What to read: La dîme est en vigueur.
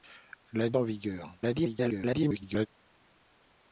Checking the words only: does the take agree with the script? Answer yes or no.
no